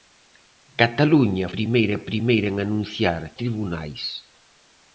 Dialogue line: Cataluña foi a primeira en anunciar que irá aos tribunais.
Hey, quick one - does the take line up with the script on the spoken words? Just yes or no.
no